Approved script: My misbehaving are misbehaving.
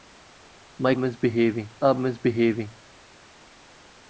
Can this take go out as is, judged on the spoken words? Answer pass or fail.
pass